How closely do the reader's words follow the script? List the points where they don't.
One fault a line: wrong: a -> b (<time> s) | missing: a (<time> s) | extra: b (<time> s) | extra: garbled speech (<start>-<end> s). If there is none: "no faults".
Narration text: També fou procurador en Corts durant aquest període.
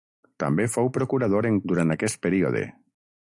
missing: Corts (1.6 s)